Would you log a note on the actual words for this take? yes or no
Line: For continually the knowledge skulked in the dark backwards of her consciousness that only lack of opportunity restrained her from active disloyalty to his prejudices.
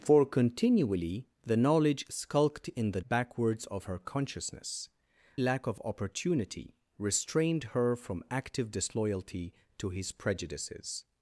yes